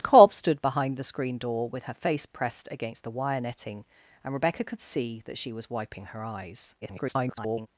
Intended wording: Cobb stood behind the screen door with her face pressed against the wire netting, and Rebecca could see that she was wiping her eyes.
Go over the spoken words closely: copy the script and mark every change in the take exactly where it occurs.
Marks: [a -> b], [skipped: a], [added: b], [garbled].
Cobb stood behind the screen door with her face pressed against the wire netting, and Rebecca could see that she was wiping her eyes. [garbled]